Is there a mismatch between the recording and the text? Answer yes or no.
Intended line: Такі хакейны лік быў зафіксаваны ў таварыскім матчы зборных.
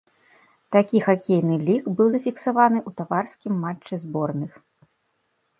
no